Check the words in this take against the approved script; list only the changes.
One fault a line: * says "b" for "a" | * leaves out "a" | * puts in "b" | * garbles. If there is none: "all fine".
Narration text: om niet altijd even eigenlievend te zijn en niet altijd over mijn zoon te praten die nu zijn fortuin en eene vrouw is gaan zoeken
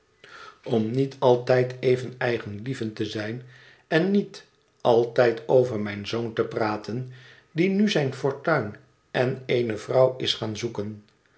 all fine